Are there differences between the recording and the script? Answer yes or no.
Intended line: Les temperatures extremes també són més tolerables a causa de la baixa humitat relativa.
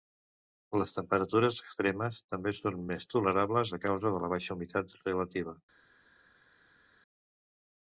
no